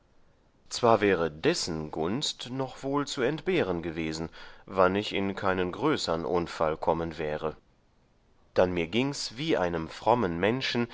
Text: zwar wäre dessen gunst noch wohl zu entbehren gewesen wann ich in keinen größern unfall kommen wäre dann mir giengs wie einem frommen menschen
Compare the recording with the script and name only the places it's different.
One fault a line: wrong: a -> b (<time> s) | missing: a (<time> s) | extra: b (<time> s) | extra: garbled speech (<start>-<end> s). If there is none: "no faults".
no faults